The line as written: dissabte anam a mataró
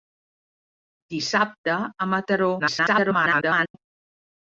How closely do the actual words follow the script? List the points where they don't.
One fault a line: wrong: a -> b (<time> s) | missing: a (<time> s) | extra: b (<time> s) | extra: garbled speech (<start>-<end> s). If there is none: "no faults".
missing: anam (1.8 s)
extra: garbled speech (2.6-3.8 s)